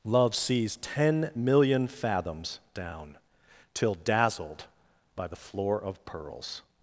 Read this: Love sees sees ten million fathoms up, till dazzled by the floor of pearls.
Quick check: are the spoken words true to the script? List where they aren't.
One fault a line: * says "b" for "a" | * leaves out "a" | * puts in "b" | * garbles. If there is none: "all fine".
* leaves out "sees"
* says "down" for "up"